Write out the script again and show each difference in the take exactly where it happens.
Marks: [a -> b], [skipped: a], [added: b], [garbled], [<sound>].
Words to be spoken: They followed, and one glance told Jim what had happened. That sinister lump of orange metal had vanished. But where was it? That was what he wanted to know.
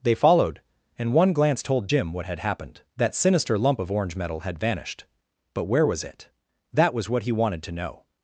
They followed, and one glance told Jim what had happened. That sinister lump of orange metal had vanished. But where was it? That was what he wanted to know.